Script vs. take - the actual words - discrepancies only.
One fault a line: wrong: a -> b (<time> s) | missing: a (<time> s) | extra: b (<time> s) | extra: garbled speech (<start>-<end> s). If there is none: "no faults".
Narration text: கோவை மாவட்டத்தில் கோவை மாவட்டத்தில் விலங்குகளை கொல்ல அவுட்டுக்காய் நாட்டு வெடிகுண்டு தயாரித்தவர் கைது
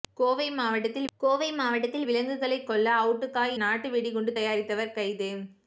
no faults